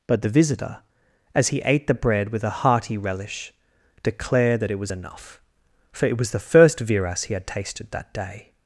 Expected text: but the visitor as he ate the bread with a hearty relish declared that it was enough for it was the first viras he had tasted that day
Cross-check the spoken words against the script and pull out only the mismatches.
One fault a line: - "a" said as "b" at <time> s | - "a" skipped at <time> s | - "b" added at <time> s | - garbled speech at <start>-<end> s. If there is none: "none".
none